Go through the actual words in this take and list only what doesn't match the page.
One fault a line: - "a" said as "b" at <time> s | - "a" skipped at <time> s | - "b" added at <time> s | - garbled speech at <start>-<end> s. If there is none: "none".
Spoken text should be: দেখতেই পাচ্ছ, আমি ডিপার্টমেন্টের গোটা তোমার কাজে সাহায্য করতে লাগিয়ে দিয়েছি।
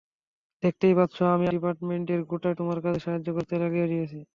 none